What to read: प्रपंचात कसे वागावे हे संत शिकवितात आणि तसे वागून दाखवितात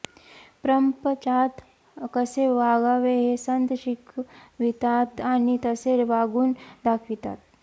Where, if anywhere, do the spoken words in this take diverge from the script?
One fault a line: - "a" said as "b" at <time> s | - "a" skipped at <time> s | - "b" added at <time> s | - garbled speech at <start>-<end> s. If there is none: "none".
none